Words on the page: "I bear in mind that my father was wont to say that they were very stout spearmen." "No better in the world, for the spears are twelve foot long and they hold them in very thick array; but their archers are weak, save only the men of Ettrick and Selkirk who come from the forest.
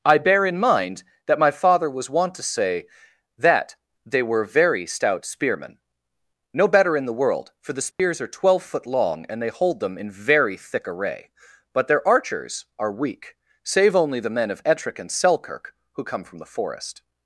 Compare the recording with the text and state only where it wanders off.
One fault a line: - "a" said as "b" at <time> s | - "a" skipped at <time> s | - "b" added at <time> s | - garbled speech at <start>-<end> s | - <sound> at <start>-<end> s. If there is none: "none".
- dropout at 7.9-8.0 s